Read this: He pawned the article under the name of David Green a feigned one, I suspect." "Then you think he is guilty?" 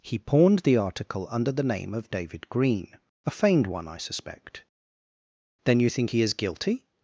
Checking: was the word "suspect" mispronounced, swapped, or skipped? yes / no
no